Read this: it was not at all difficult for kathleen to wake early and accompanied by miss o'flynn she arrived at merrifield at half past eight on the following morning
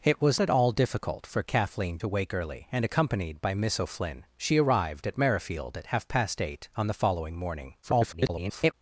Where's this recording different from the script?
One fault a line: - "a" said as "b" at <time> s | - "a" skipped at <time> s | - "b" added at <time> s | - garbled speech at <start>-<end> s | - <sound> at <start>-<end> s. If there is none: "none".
- "not" skipped at 0.4 s
- garbled speech at 7.8-8.7 s